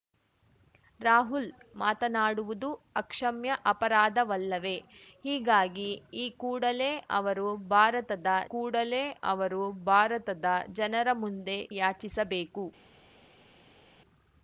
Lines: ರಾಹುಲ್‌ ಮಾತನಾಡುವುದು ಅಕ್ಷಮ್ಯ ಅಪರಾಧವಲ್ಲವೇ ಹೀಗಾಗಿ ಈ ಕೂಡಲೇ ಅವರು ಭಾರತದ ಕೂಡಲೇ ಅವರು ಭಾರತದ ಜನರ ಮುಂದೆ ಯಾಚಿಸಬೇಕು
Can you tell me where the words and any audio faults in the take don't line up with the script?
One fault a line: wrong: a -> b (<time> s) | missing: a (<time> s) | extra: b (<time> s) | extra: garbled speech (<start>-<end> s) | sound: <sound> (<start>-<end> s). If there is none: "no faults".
no faults